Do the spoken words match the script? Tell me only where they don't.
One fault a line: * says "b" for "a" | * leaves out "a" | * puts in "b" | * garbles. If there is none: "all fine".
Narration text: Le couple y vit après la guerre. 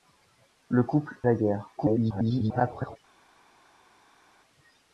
* leaves out "y vit après"
* garbles